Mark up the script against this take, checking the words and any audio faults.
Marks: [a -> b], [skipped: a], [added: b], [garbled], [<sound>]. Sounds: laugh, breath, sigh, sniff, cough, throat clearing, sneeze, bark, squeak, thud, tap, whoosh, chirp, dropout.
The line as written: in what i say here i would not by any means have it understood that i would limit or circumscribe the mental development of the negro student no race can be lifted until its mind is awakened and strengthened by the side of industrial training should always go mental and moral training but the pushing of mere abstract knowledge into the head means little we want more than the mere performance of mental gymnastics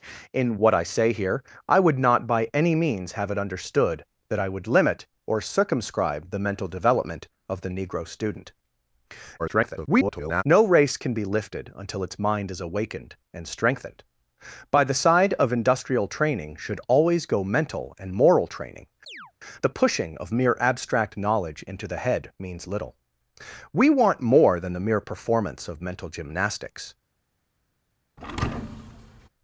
in what i say here i would not by any means have it understood that i would limit or circumscribe the mental development of the negro student [garbled] no race can be lifted until its mind is awakened and strengthened by the side of industrial training should always go mental and moral training [skipped: but] [chirp] the pushing of mere abstract knowledge into the head means little we want more than the mere performance of mental gymnastics [thud]